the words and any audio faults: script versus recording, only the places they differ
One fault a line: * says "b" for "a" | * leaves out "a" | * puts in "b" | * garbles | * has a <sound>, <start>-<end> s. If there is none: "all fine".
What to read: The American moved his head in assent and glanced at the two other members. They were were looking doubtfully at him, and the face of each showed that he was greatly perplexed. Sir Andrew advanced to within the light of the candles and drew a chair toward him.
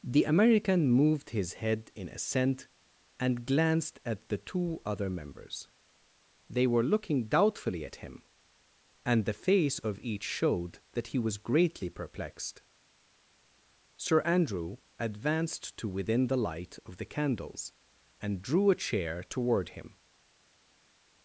* leaves out "were"